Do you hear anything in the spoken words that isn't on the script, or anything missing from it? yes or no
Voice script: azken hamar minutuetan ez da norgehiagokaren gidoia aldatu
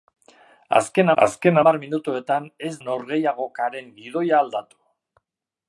yes